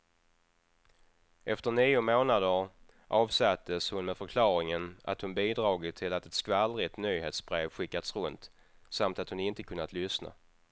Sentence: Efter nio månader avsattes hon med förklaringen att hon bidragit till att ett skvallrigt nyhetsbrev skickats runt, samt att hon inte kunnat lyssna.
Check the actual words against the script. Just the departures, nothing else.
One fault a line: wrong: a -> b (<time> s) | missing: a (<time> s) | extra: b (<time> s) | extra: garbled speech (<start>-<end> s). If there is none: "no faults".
no faults